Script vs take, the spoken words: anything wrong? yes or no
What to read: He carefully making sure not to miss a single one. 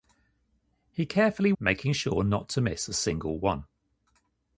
no